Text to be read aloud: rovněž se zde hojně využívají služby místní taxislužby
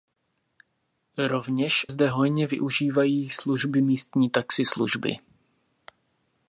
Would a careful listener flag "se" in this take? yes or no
yes